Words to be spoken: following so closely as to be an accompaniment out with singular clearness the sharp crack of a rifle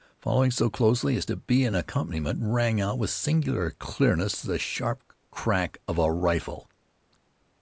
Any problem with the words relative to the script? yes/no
yes